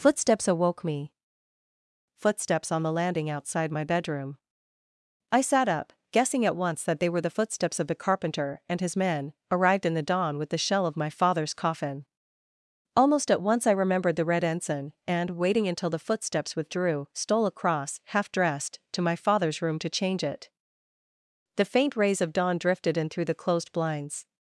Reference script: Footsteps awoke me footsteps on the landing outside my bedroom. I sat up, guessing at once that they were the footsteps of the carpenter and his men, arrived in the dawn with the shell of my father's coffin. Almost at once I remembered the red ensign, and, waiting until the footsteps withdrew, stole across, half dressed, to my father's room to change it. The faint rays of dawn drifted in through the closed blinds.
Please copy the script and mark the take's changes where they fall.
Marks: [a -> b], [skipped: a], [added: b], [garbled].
Footsteps awoke me footsteps on the landing outside my bedroom. I sat up, guessing at once that they were the footsteps of the carpenter and his men, arrived in the dawn with the shell of my father's coffin. Almost at once I remembered the red ensign, and, waiting until the footsteps withdrew, stole across, half dressed, to my father's room to change it. The faint rays of dawn drifted in through the closed blinds.